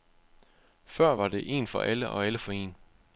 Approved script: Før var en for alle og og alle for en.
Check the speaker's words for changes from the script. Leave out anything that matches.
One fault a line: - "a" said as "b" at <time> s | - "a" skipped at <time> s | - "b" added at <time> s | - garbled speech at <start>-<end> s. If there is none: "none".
- "det" added at 1.3 s
- "og" skipped at 2.3 s